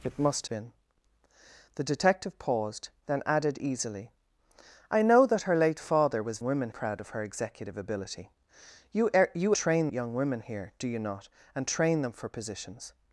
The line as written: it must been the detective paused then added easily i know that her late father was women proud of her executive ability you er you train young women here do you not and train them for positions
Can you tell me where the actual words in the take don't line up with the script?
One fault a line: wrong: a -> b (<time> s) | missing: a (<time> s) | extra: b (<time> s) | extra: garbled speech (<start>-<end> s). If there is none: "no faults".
no faults